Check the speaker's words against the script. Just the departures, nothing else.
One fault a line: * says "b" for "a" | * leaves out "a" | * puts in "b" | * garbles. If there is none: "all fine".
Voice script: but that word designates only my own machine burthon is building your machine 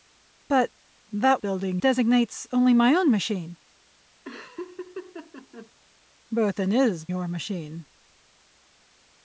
* says "building" for "word"
* leaves out "building"